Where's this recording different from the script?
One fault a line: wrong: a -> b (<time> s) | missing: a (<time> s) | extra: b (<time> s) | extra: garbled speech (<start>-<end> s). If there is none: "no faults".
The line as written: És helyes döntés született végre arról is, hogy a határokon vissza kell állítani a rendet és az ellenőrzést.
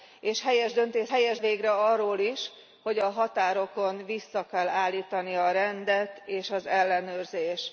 wrong: született -> helyes (1.1 s)